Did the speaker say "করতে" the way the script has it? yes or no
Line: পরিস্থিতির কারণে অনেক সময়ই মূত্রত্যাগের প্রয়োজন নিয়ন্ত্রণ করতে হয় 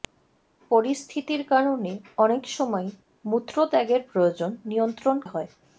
no